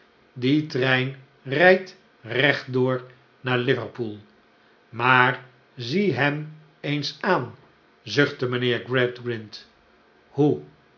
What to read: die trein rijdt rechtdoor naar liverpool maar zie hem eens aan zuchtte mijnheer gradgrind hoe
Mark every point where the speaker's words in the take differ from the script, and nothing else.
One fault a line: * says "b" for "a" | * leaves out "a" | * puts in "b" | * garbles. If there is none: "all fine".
all fine